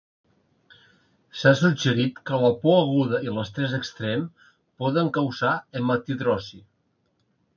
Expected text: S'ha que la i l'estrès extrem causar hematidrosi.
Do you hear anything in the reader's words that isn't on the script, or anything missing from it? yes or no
yes